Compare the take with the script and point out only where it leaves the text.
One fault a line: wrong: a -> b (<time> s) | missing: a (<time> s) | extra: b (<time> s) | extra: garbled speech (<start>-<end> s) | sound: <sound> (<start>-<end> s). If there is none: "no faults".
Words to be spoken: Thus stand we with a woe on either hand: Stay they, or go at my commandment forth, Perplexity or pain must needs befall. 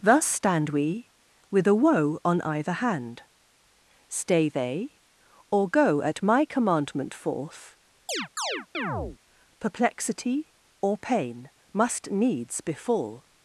sound: chirp (8.1-9.2 s)